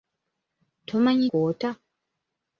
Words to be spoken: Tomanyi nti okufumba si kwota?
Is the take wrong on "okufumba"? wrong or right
wrong